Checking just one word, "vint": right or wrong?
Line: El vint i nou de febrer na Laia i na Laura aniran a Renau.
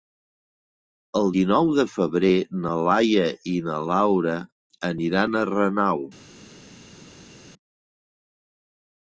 wrong